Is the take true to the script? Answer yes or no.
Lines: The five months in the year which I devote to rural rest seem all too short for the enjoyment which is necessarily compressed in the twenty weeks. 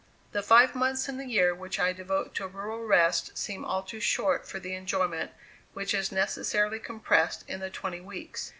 yes